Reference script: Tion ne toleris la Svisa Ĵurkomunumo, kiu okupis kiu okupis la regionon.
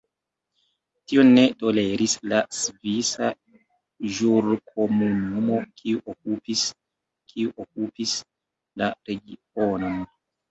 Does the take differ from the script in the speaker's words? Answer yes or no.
no